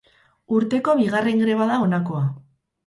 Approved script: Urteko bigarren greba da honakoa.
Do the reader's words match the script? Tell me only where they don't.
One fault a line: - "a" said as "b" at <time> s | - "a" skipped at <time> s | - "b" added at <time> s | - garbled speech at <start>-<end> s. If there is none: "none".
none